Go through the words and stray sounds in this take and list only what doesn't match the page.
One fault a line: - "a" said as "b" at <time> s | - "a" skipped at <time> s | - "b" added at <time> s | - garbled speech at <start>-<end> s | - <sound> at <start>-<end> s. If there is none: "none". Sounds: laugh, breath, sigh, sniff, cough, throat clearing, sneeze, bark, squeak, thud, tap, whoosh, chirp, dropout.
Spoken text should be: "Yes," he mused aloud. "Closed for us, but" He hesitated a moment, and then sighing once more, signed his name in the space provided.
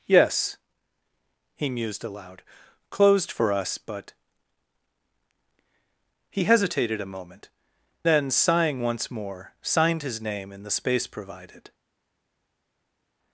- "and" skipped at 7.5 s